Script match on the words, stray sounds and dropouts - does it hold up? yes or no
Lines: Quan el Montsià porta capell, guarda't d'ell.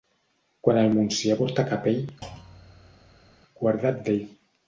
no